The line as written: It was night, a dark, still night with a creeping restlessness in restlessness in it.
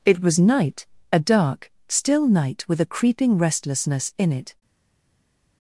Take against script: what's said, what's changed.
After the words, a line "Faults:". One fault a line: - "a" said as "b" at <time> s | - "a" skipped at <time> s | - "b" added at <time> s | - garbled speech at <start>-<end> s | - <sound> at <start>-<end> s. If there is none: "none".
It was night, a dark, still night with a creeping restlessness in it.
Faults:
- "restlessness in" skipped at 4.3 s